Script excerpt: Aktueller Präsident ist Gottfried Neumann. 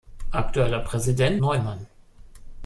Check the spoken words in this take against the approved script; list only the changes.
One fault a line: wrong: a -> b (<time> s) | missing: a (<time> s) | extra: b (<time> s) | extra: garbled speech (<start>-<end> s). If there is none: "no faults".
missing: ist Gottfried (1.4 s)